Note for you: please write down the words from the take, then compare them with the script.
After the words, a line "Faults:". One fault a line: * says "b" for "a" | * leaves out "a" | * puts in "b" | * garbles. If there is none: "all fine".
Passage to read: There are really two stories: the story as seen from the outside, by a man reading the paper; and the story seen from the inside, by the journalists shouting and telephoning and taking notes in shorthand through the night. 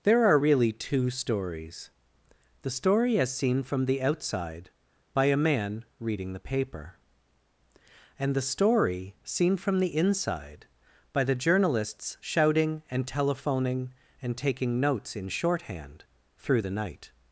There are really two stories: the story as seen from the outside, by a man reading the paper; and the story seen from the inside, by the journalists shouting and telephoning and taking notes in shorthand through the night.
Faults:
all fine